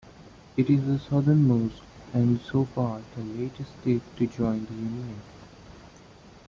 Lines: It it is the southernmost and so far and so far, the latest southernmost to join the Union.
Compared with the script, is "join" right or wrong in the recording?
right